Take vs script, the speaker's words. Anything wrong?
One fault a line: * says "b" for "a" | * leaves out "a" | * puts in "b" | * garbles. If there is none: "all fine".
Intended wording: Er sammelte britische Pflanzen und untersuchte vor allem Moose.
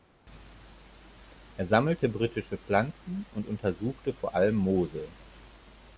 all fine